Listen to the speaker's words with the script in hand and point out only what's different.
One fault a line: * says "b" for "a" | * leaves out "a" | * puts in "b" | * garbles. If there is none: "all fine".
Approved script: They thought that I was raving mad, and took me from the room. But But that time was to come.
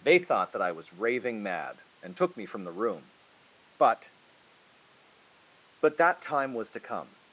all fine